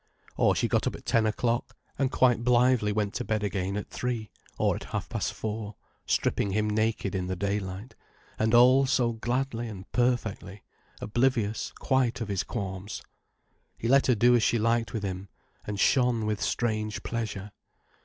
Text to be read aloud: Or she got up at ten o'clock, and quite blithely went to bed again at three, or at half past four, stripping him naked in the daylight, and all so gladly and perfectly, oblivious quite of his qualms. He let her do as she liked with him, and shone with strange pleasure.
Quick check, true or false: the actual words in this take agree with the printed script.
true